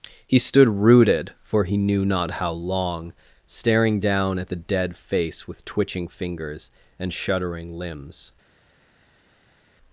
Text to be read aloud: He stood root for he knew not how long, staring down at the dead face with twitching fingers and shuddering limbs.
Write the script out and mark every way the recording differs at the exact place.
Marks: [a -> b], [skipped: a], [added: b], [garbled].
He stood [root -> rooted] for he knew not how long, staring down at the dead face with twitching fingers and shuddering limbs.